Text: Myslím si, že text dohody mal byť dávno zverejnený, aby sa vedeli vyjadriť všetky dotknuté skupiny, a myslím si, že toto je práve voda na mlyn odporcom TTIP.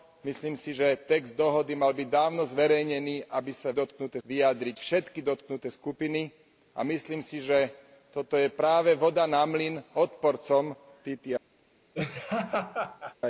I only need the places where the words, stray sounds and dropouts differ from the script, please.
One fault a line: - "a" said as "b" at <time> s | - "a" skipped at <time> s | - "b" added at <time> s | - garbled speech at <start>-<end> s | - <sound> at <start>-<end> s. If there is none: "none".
- "vedeli" said as "dotknuté" at 3.7 s
- laugh at 11.9-13.2 s